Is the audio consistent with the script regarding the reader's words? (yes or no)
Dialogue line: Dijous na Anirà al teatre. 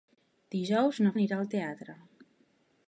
yes